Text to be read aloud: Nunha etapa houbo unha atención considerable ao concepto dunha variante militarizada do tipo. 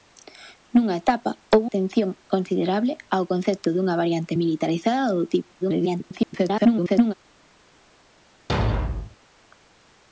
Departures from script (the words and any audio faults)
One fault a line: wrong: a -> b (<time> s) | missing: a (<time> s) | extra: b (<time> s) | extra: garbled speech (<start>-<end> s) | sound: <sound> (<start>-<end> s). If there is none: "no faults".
missing: unha (1.7 s)
extra: garbled speech (5.6-7.1 s)
sound: thud (8.5-9.2 s)